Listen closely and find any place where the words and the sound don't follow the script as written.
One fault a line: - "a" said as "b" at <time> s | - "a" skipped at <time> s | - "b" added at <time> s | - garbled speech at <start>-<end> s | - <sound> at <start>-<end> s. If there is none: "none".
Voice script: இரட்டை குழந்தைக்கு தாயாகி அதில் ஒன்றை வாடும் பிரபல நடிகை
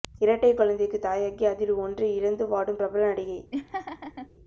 - "இழந்து" added at 2.1 s
- laugh at 3.5-4.3 s